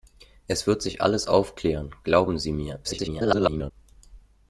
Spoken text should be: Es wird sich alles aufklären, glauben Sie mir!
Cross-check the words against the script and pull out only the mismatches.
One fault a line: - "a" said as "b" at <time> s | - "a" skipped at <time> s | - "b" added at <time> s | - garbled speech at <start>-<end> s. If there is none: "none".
- garbled speech at 2.8-3.7 s